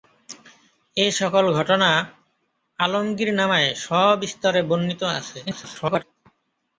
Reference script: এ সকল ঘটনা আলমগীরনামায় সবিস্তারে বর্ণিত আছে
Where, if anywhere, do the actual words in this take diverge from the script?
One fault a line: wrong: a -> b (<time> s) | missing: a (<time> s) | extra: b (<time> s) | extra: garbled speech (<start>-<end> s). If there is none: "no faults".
extra: garbled speech (5.4-6.0 s)